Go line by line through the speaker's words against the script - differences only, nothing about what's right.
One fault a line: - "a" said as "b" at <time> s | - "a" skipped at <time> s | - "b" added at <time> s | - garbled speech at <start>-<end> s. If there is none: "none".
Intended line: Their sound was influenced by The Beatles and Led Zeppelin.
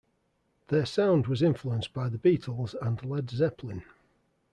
none